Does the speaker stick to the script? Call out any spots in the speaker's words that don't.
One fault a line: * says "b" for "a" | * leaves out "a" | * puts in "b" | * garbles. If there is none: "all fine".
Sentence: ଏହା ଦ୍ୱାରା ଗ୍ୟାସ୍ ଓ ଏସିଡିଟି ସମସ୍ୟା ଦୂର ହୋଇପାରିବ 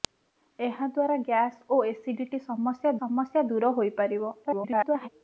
* puts in "ସମସ୍ୟା"
* garbles